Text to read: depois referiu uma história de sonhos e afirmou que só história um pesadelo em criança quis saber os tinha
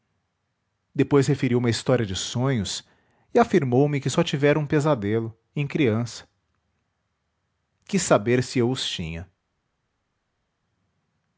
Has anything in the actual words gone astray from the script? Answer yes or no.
yes